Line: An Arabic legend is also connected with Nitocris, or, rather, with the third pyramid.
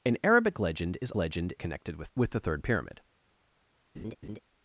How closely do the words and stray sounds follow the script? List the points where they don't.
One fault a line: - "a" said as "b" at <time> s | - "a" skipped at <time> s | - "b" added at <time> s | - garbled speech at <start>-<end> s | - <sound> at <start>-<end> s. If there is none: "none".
- "also" said as "legend" at 1.1 s
- "Nitocris or rather" skipped at 2.1 s
- laugh at 3.9-4.4 s